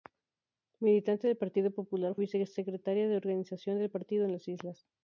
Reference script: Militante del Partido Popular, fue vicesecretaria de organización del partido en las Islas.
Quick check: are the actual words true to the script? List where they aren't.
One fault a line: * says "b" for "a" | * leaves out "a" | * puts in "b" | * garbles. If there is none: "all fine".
* leaves out "fue"